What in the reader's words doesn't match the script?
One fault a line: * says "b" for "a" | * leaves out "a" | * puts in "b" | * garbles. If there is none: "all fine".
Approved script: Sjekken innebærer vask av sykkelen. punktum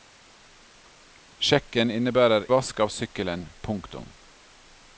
all fine